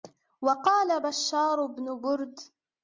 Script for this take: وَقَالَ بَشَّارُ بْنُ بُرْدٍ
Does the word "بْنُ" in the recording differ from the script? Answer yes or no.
no